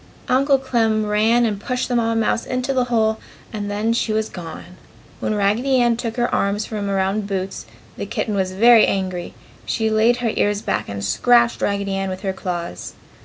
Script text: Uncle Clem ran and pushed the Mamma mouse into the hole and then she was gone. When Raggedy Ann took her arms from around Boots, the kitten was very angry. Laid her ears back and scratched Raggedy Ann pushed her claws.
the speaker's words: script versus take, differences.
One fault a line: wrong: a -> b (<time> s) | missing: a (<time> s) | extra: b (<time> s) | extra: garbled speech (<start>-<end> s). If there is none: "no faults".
extra: She (9.7 s)
wrong: pushed -> with (12.1 s)